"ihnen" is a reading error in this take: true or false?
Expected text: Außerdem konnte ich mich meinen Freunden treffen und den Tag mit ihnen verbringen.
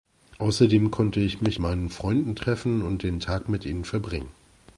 false